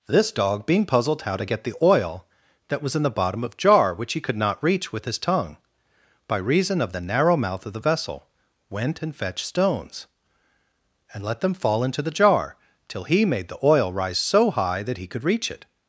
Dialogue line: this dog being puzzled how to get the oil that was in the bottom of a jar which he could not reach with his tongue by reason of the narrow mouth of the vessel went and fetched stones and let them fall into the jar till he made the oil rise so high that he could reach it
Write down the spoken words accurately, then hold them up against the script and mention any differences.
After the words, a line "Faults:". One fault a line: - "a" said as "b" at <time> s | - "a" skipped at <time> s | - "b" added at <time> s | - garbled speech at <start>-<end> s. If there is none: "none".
this dog being puzzled how to get the oil that was in the bottom of jar which he could not reach with his tongue by reason of the narrow mouth of the vessel went and fetched stones and let them fall into the jar till he made the oil rise so high that he could reach it
Faults:
- "a" skipped at 3.6 s